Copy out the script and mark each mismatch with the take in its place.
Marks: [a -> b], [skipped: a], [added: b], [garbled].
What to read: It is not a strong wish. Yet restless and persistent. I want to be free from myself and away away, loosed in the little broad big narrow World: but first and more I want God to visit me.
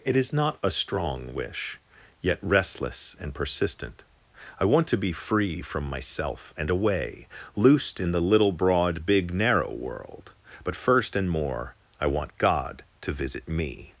It is not a strong wish. Yet restless and persistent. I want to be free from myself and away [skipped: away,] loosed in the little broad big narrow World: but first and more I want God to visit me.